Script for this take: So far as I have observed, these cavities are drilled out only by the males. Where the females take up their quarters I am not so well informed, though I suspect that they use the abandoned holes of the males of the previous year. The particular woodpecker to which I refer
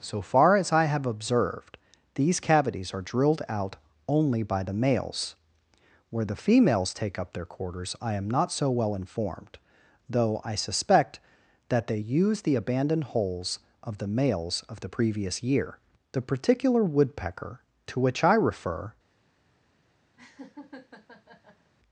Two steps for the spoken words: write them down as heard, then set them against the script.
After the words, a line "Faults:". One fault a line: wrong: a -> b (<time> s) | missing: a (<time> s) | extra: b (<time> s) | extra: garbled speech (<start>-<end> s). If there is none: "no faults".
So far as I have observed, these cavities are drilled out only by the males. Where the females take up their quarters I am not so well informed, though I suspect that they use the abandoned holes of the males of the previous year. The particular woodpecker to which I refer
Faults:
no faults